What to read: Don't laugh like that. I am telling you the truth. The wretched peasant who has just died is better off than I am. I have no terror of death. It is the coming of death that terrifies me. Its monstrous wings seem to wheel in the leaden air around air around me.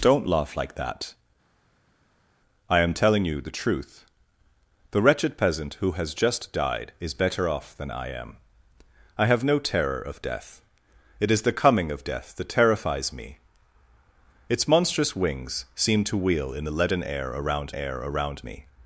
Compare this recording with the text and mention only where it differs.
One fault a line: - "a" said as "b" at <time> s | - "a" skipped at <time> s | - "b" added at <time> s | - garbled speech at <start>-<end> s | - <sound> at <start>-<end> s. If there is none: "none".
none